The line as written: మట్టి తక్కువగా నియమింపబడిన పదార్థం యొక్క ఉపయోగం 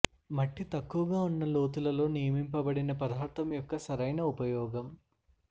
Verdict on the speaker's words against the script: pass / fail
fail